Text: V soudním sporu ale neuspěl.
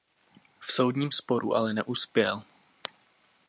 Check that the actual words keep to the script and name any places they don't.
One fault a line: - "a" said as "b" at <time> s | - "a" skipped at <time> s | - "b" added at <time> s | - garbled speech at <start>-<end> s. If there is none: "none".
none